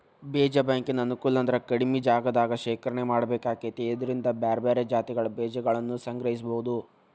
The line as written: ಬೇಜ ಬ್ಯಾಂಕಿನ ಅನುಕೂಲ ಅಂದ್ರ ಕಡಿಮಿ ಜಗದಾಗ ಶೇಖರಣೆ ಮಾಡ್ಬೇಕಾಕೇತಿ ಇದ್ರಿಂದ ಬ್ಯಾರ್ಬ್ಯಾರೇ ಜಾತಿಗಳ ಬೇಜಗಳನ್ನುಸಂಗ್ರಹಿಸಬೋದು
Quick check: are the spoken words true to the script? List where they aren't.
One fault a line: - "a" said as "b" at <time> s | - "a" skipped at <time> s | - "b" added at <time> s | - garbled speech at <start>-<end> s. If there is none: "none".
none